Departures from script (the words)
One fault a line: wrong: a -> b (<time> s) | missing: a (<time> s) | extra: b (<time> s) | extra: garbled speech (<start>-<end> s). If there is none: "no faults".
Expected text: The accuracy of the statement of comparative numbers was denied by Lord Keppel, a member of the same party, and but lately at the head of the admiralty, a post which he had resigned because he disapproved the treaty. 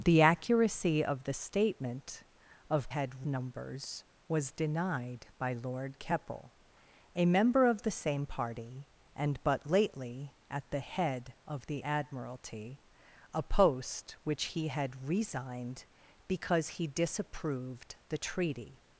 wrong: comparative -> had (2.9 s)